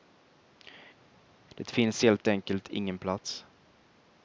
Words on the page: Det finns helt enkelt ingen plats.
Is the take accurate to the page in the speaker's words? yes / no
yes